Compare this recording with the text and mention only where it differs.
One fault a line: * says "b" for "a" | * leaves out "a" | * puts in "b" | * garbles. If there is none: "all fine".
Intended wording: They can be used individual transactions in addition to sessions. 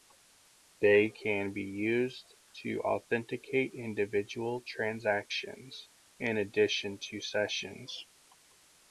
* puts in "to authenticate"